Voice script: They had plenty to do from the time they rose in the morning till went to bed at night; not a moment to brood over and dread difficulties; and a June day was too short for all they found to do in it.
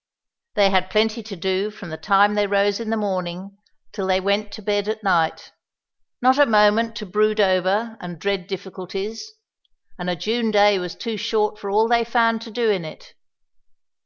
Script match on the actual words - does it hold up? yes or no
no